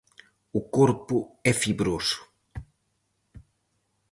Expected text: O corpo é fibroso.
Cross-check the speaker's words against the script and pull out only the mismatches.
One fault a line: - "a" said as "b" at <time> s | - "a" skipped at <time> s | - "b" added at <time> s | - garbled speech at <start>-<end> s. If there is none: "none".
none